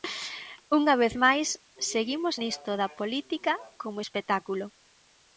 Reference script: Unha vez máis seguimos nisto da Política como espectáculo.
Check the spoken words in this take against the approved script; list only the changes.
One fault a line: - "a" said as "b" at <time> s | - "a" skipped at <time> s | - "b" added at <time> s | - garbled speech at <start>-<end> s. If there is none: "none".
none